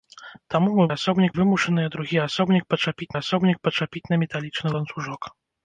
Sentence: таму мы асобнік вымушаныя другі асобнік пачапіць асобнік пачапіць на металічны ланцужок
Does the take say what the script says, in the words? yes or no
yes